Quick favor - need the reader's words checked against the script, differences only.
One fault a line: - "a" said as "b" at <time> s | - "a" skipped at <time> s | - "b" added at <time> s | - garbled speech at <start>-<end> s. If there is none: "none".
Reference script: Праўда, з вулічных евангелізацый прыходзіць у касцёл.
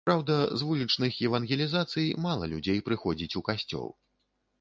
- "мала людзей" added at 2.2 s